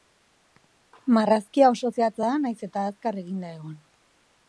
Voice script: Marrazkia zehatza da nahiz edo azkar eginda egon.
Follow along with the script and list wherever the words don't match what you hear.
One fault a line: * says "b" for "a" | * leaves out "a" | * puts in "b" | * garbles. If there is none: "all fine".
* puts in "oso"
* says "eta" for "edo"